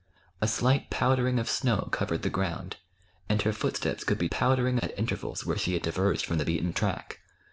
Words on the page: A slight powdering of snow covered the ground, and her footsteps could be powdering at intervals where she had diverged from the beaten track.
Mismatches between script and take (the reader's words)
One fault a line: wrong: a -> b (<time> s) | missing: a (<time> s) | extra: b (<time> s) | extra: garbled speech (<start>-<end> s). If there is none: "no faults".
no faults